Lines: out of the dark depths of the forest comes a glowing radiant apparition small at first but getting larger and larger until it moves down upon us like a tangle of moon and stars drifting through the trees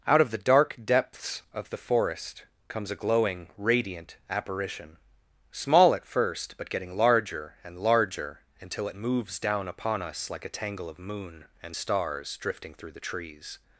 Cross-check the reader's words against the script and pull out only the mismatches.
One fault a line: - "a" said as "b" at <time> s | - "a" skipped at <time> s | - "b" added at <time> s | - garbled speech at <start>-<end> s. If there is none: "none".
none